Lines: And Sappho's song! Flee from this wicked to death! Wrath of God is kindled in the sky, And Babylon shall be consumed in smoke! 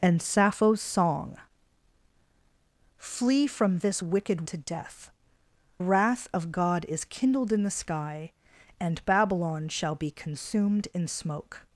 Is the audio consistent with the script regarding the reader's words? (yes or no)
yes